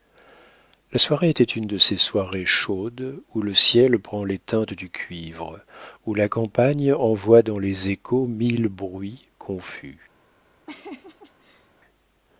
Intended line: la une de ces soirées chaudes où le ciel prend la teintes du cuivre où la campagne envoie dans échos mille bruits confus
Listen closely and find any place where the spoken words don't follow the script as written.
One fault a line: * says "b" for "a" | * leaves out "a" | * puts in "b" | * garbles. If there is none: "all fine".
* puts in "soirée était"
* says "les" for "la"
* puts in "les"